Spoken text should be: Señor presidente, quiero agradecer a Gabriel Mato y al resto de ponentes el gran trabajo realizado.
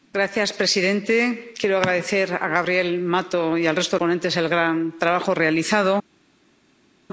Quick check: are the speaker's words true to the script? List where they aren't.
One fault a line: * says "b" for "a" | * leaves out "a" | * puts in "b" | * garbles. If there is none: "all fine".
all fine